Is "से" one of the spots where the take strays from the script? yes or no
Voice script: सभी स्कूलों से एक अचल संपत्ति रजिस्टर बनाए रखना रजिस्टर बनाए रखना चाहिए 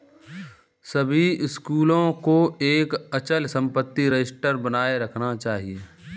yes